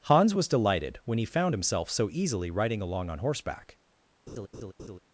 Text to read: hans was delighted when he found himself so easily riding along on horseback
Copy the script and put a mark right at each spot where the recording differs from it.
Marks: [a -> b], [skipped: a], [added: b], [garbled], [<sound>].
hans was delighted when he found himself so easily riding along on horseback [laugh]